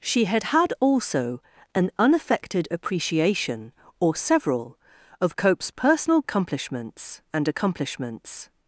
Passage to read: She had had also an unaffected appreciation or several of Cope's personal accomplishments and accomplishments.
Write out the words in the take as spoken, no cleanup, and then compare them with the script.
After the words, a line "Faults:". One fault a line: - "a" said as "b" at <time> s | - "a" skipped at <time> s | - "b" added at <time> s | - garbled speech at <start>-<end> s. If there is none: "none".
She had had also an unaffected appreciation or several of Cope's personal accomplishments and accomplishments.
Faults:
none